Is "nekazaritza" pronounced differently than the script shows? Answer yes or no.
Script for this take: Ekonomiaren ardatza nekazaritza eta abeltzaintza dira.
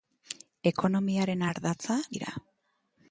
yes